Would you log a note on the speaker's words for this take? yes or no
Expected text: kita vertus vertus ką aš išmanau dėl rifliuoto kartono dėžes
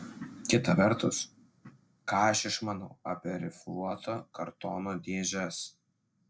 yes